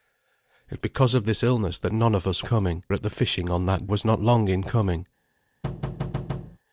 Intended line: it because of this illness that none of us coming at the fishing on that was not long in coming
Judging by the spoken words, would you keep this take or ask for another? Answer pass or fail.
pass